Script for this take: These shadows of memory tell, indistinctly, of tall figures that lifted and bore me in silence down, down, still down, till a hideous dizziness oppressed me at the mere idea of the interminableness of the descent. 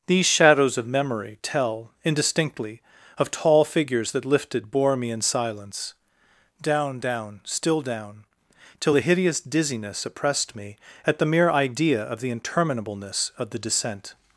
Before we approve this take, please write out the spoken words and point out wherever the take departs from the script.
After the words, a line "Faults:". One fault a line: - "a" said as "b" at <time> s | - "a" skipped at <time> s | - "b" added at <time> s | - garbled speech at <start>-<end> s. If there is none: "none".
These shadows of memory tell, indistinctly, of tall figures that lifted bore me in silence down, down, still down, till a hideous dizziness oppressed me at the mere idea of the interminableness of the descent.
Faults:
- "and" skipped at 4.7 s